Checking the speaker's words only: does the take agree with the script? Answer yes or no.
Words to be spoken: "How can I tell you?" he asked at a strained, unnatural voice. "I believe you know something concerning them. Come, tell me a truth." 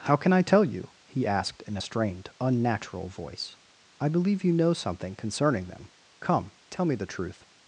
no